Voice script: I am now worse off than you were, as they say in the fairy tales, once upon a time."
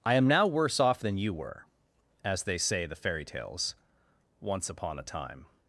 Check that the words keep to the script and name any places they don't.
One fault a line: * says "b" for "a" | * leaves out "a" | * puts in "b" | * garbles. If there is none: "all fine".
* leaves out "in"